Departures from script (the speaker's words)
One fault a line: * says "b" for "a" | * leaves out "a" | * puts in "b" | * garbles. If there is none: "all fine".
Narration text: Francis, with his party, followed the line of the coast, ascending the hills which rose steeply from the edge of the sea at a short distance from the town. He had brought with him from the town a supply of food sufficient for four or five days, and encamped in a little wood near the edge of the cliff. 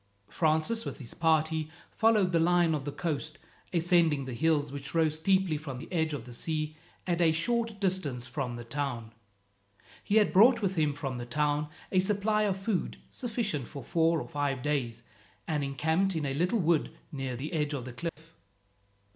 all fine